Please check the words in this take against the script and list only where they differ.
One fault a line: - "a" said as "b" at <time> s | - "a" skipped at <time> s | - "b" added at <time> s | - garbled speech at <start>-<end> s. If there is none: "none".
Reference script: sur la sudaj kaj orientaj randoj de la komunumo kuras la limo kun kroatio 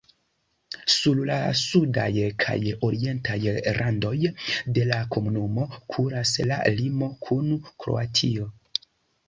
none